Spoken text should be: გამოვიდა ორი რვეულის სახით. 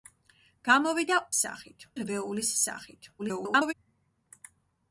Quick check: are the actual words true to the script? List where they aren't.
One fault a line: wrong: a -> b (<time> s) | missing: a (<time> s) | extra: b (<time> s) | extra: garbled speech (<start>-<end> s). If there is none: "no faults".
wrong: ორი -> სახით (1.4 s)
extra: garbled speech (3.2-3.7 s)